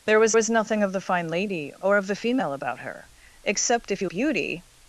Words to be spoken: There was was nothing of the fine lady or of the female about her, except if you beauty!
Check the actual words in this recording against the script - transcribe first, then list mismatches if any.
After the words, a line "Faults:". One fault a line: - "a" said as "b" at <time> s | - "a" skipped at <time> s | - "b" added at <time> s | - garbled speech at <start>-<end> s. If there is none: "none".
There was was nothing of the fine lady or of the female about her, except if you beauty!
Faults:
none